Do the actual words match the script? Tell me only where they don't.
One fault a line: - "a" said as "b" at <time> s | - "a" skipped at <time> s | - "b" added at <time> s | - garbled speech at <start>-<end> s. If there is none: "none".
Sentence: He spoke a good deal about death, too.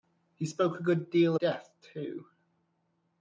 - "about" skipped at 1.4 s